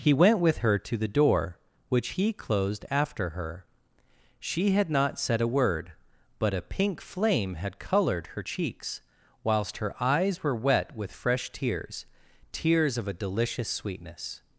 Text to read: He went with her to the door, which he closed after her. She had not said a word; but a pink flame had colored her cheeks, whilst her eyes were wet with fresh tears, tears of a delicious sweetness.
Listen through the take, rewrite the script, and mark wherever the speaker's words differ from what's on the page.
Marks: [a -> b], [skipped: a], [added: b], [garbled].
He went with her to the door, which he closed after her. She had not said a word; but a pink flame had colored her cheeks, whilst her eyes were wet with fresh tears, tears of a delicious sweetness.